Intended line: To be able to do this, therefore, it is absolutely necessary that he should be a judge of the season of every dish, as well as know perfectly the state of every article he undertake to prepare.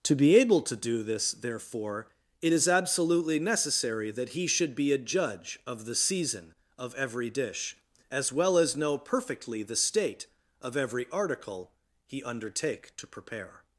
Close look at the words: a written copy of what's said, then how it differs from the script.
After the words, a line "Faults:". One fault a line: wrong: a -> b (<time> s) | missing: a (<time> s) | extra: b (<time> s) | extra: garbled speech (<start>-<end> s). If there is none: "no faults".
To be able to do this, therefore, it is absolutely necessary that he should be a judge of the season of every dish, as well as know perfectly the state of every article he undertake to prepare.
Faults:
no faults